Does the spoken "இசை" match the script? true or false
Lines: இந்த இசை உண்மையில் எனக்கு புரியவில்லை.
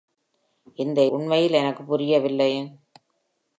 false